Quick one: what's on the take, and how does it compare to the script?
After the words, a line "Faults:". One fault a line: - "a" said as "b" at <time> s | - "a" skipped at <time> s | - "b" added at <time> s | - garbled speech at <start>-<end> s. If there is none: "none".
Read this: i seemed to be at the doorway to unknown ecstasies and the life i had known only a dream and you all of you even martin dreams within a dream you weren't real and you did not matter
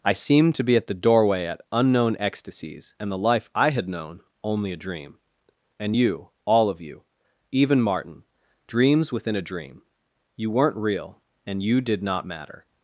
i seemed to be at the doorway at unknown ecstasies and the life i had known only a dream and you all of you even martin dreams within a dream you weren't real and you did not matter
Faults:
- "to" said as "at" at 1.4 s